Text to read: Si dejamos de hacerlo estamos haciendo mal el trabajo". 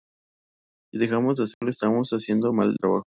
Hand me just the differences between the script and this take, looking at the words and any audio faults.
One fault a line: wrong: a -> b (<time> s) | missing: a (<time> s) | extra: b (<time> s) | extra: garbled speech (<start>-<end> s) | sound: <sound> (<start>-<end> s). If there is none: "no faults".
sound: dropout (1.5-1.6 s)
missing: el (2.8 s)